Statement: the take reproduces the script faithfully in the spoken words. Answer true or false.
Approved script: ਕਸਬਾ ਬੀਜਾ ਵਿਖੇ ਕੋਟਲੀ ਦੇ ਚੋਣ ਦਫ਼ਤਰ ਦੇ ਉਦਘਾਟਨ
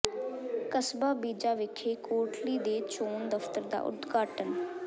false